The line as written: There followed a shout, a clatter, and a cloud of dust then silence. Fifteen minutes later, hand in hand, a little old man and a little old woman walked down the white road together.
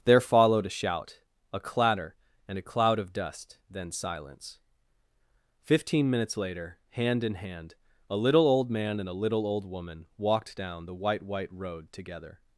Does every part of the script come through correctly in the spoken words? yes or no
no